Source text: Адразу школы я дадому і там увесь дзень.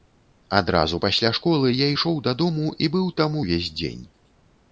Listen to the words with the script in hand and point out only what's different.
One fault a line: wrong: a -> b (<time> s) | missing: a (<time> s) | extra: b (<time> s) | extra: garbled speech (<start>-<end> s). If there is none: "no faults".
extra: пасля (1.0 s)
extra: ішоў (2.0 s)
extra: быў (3.0 s)